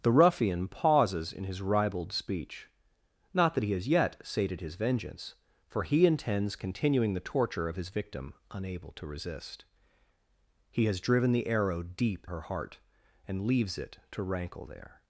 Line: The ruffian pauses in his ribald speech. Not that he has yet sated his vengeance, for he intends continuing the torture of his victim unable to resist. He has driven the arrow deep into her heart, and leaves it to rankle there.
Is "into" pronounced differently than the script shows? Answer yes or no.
yes